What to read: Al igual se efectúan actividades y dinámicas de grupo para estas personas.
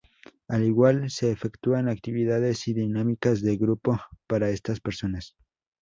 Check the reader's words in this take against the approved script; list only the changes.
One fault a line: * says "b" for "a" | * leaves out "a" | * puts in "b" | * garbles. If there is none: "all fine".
all fine